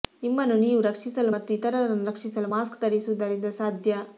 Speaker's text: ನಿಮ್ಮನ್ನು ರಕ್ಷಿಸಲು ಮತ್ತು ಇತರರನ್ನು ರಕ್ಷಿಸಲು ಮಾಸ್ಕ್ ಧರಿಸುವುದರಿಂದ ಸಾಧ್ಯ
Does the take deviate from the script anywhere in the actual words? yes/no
yes